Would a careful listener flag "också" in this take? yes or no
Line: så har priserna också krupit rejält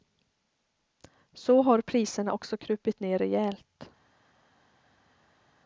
no